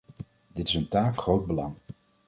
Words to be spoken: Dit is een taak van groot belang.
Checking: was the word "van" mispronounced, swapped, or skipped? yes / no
yes